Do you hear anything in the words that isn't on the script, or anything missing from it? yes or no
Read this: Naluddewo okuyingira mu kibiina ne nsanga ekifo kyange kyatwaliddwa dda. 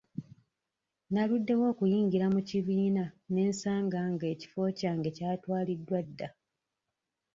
yes